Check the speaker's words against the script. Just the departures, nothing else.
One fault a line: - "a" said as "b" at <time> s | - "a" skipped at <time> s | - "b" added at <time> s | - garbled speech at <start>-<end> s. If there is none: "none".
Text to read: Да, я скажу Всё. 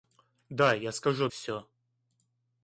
none